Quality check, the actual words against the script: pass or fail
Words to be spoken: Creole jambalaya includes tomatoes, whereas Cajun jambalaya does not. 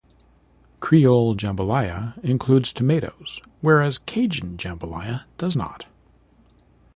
pass